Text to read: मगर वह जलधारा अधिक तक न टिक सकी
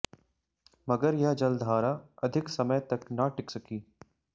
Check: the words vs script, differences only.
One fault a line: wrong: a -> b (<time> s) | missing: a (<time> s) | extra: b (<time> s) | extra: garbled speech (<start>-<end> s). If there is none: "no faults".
wrong: वह -> यह (1.1 s)
extra: समय (2.5 s)